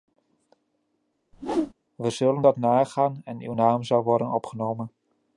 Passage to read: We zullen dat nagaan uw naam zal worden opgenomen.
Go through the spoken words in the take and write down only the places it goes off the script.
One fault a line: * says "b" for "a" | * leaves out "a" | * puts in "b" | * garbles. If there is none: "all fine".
* puts in "en"